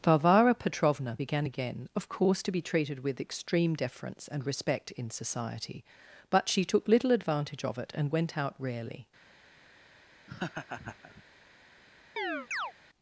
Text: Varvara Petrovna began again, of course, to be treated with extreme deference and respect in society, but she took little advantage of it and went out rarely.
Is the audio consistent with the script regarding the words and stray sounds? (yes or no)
no